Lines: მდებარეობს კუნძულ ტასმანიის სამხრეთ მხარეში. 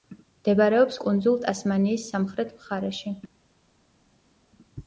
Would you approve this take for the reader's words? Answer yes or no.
yes